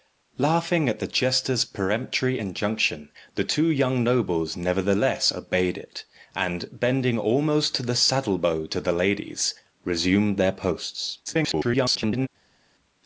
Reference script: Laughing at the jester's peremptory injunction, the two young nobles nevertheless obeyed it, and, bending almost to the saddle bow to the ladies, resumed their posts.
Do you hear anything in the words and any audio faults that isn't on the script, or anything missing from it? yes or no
yes